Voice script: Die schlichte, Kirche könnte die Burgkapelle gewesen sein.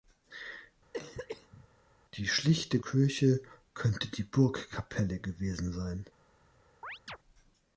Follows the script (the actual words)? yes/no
yes